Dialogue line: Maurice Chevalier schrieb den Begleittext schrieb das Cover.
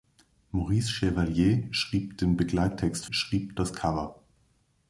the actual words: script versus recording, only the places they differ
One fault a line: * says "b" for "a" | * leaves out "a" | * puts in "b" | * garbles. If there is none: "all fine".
all fine